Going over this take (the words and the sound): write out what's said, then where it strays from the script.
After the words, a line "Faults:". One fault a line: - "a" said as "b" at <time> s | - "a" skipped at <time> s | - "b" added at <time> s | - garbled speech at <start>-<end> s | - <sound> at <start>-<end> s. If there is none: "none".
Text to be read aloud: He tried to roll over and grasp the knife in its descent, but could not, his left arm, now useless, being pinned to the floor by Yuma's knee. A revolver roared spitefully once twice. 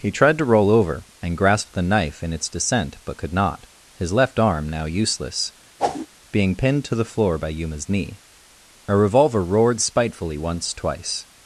He tried to roll over and grasp the knife in its descent, but could not, his left arm, now useless, being pinned to the floor by Yuma's knee. A revolver roared spitefully once twice.
Faults:
- whoosh at 5.8-6.1 s